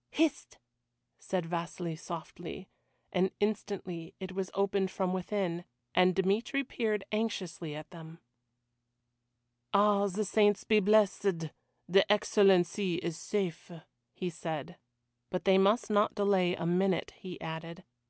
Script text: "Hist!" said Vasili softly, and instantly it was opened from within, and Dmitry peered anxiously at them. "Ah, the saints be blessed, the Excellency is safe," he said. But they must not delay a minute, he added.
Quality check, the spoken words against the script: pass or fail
pass